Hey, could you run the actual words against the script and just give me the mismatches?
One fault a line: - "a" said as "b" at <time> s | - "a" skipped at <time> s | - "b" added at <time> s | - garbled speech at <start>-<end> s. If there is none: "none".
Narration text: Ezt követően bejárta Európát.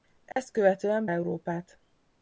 - "bejárta" skipped at 1.1 s